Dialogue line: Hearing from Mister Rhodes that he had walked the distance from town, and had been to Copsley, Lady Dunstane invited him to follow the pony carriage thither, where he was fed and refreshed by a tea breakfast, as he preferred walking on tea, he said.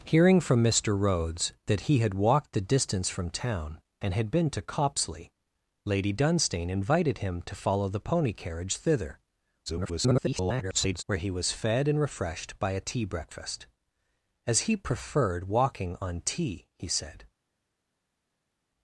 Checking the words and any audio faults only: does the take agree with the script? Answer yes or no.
no